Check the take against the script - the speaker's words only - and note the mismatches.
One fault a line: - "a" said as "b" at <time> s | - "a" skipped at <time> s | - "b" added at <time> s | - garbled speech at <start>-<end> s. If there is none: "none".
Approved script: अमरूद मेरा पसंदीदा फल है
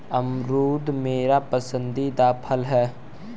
none